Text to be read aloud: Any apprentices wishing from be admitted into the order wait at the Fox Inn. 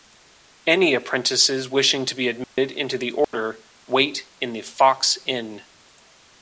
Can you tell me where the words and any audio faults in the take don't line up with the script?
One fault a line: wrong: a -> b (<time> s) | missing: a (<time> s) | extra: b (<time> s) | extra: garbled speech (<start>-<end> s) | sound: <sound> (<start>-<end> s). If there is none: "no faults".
wrong: from -> to (2.0 s)
sound: dropout (2.4-2.6 s)
sound: dropout (3.2-3.3 s)
wrong: at -> in (4.4 s)